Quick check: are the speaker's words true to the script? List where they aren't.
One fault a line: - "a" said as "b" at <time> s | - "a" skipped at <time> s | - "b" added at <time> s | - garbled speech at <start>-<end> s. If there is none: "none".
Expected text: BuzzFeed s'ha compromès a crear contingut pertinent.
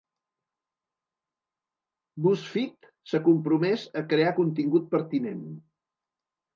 none